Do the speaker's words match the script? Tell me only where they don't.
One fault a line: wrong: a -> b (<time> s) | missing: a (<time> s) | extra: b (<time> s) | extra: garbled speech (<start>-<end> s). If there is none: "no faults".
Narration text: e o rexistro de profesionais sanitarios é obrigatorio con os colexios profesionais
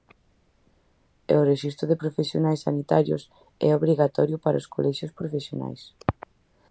wrong: con -> para (4.4 s)